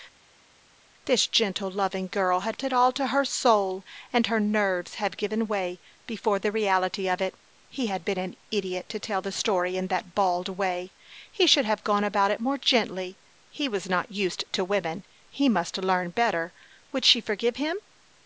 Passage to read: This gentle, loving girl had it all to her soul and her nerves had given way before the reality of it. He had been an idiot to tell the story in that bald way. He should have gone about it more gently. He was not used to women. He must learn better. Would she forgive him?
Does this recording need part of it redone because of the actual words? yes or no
no